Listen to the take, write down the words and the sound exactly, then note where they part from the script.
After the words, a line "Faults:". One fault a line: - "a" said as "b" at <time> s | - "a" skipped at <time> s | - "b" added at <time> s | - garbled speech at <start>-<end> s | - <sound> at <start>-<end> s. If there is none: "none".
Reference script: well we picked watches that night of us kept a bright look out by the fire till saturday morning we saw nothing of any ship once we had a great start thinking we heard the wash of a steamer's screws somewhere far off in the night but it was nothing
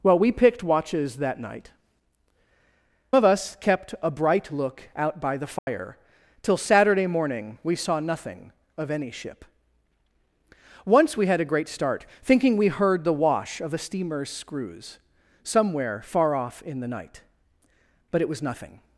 well we picked watches that night of us kept a bright look out by the fire till saturday morning we saw nothing of any ship once we had a great start thinking we heard the wash of a steamer's screws somewhere far off in the night but it was nothing
Faults:
- dropout at 5.6-5.7 s